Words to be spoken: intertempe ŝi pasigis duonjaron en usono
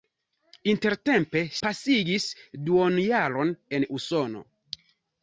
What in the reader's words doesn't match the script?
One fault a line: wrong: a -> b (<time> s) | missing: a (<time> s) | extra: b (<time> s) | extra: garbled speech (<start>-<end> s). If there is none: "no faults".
missing: ŝi (1.4 s)